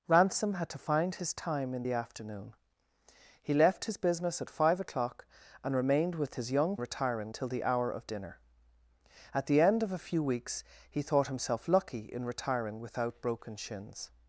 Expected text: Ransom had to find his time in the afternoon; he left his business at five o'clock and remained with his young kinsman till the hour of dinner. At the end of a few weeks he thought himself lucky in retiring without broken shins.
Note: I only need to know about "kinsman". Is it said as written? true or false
false